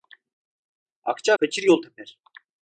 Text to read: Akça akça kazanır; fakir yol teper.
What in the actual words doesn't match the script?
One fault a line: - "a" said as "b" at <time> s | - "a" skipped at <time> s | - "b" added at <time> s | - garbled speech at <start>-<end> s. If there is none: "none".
- "akça kazanır" skipped at 1.3 s